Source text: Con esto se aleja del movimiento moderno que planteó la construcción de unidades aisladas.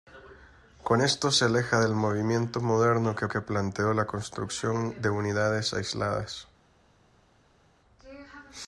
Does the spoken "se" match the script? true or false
true